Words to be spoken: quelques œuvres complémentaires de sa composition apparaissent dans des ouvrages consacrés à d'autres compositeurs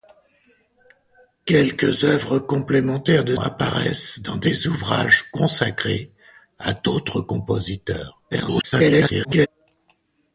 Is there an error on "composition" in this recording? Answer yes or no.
yes